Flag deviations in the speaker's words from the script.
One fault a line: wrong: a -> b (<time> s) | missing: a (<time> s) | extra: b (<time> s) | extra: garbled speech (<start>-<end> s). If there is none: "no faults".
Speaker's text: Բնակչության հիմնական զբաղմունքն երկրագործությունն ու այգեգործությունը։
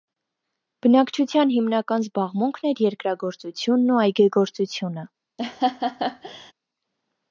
extra: էր (2.7 s)